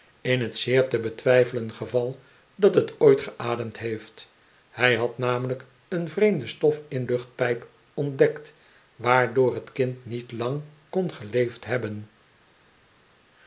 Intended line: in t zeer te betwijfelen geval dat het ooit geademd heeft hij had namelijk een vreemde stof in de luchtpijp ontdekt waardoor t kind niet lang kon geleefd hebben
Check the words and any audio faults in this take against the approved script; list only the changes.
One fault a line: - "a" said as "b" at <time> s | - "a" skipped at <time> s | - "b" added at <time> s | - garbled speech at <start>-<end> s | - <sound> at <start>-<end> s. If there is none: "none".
- "de" skipped at 7.0 s